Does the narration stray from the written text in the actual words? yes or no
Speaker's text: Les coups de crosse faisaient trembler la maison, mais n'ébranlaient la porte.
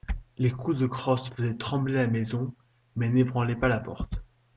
yes